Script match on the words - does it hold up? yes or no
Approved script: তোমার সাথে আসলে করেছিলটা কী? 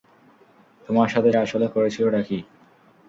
yes